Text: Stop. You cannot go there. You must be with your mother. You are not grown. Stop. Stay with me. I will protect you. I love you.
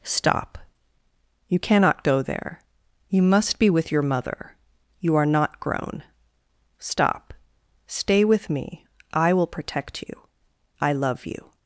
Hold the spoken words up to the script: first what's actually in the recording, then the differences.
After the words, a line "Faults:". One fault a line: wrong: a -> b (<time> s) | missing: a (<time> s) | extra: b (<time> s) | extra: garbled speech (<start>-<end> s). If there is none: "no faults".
Stop. You cannot go there. You must be with your mother. You are not grown. Stop. Stay with me. I will protect you. I love you.
Faults:
no faults